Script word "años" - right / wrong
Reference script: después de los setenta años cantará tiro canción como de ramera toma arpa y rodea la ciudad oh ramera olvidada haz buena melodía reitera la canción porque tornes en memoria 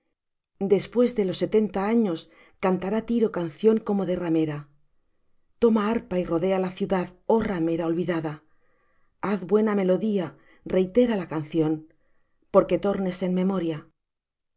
right